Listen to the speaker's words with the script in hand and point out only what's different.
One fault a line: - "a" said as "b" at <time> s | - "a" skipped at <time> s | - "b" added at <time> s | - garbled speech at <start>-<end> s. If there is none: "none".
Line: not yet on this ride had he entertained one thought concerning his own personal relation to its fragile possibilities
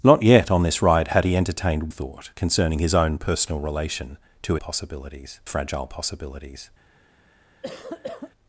- "one" skipped at 1.9 s
- "its" said as "possibilities" at 4.6 s